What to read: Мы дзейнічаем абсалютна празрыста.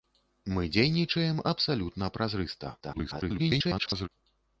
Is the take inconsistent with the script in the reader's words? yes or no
yes